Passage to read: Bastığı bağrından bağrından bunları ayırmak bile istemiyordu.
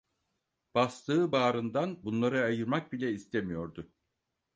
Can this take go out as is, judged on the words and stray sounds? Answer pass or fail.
fail